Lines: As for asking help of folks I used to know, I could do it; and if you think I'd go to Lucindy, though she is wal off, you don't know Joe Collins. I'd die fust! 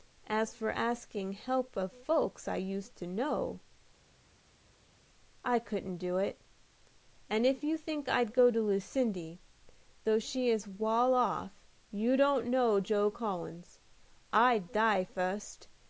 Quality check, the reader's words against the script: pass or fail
fail